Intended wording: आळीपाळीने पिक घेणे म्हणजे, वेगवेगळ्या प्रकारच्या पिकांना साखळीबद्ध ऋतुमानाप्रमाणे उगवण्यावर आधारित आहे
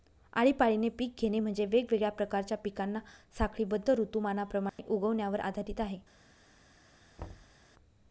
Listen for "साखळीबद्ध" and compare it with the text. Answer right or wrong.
right